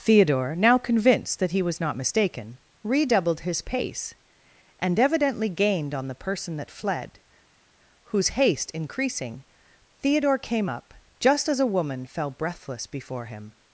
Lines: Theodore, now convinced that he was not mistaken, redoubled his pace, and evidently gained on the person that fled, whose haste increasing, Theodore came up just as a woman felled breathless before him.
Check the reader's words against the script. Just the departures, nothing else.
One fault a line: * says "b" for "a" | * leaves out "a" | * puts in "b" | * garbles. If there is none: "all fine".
* says "fell" for "felled"